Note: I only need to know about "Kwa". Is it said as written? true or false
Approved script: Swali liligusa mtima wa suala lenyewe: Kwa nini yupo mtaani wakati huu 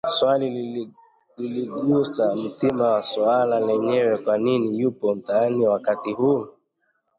true